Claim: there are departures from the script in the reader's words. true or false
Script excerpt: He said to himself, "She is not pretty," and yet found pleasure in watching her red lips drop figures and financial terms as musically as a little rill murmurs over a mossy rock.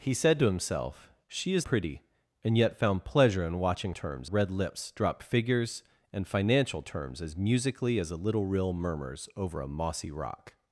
true